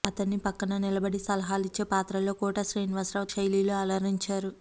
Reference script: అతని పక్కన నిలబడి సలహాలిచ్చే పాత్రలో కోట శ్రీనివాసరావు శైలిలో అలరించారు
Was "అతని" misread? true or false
false